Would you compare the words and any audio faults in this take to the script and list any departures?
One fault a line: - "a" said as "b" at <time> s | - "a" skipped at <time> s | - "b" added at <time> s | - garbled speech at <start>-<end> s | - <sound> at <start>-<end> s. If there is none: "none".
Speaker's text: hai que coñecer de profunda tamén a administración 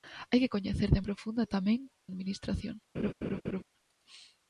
- laugh at 2.9-3.6 s